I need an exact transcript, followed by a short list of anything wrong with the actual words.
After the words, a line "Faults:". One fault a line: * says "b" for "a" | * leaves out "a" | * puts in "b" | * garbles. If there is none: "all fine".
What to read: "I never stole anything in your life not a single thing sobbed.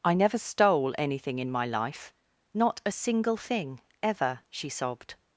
"I never stole anything in my life not a single thing ever," she sobbed.
Faults:
* says "my" for "your"
* puts in "ever she"